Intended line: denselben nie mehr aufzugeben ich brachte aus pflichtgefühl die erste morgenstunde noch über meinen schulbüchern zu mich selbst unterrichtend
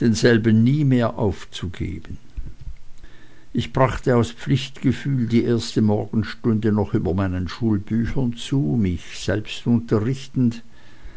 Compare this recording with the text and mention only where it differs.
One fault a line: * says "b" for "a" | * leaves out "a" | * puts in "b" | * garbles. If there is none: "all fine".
all fine